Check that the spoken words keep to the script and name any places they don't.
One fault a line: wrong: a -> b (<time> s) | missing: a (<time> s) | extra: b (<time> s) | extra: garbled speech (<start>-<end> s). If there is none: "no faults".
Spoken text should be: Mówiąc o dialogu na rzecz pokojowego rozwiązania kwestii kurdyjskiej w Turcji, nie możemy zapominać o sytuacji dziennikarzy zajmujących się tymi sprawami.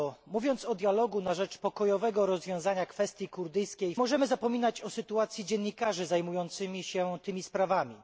missing: w Turcji nie (3.9 s)